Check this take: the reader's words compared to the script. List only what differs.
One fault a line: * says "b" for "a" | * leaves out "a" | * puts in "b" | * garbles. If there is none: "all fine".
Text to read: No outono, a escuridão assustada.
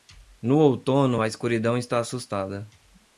* puts in "está"